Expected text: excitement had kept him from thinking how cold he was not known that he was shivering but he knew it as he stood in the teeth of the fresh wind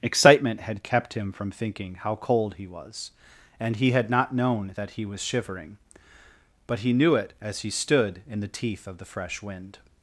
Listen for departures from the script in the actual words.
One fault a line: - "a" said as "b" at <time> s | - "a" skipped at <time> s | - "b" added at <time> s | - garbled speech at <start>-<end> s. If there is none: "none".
- "and he had" added at 3.6 s